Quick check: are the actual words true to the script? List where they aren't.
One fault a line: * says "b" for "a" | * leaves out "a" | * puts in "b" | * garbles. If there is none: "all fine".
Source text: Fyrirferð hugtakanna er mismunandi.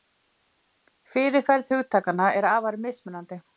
* puts in "afar"